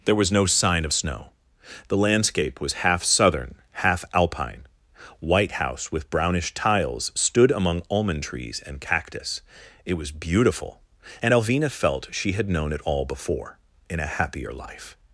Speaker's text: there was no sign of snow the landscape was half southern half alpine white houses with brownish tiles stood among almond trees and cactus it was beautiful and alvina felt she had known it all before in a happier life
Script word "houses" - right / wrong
wrong